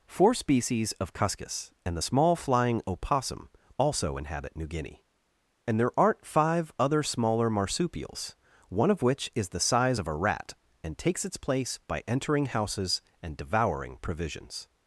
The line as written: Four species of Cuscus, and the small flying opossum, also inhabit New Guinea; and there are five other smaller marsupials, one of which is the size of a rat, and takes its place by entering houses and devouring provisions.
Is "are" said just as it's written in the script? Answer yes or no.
no